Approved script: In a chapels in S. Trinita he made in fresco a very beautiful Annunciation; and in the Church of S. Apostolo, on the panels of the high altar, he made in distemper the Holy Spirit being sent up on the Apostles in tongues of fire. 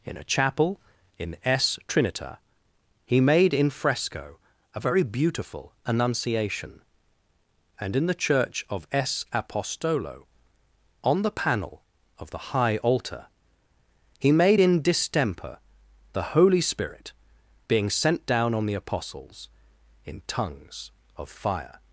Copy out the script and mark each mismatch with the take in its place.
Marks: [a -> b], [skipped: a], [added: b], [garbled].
In a [chapels -> chapel] in S. Trinita he made in fresco a very beautiful Annunciation; and in the Church of S. Apostolo, on the [panels -> panel] of the high altar, he made in distemper the Holy Spirit being sent [up -> down] on the Apostles in tongues of fire.